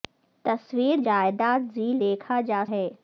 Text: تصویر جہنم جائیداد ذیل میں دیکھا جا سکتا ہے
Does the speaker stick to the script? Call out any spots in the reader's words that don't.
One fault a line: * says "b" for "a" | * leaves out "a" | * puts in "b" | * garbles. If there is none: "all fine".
* leaves out "جہنم"
* leaves out "میں"
* leaves out "سکتا"